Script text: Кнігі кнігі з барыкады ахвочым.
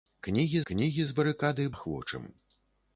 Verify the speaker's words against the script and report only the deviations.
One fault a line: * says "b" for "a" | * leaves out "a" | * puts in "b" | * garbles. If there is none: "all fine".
all fine